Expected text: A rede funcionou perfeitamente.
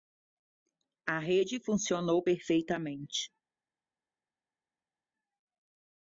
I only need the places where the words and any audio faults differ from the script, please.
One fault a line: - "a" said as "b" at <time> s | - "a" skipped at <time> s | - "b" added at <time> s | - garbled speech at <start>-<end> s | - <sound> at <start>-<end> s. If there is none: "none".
none